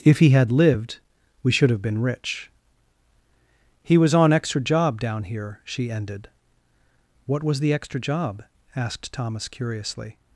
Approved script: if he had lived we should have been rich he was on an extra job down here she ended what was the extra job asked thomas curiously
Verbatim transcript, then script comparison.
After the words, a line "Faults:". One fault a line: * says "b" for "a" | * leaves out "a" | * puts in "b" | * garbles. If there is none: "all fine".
if he had lived we should have been rich he was on extra job down here she ended what was the extra job asked thomas curiously
Faults:
* leaves out "an"